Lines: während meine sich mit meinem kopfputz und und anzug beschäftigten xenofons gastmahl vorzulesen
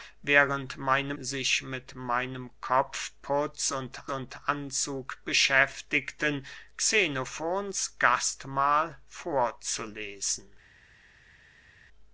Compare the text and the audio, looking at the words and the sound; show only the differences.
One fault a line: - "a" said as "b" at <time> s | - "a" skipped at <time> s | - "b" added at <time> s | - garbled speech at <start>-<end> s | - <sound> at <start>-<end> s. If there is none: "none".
none